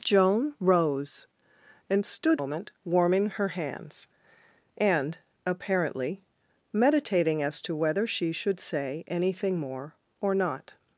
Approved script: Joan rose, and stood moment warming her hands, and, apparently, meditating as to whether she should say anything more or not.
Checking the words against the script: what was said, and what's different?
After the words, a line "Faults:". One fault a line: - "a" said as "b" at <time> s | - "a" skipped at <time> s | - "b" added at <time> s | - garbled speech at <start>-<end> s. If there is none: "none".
Joan rose, and stood moment warming her hands, and, apparently, meditating as to whether she should say anything more or not.
Faults:
none